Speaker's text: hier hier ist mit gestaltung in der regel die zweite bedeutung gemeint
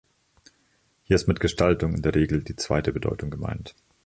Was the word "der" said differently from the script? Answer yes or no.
no